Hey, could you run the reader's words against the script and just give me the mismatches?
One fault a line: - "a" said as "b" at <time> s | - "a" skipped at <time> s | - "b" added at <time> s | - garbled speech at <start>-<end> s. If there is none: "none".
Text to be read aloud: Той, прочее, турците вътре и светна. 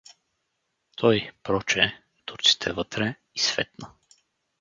none